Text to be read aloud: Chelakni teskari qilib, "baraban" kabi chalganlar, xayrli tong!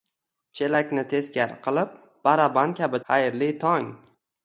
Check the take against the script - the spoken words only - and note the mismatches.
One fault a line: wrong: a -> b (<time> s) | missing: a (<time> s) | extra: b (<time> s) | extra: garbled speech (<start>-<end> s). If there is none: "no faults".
missing: chalganlar (3.0 s)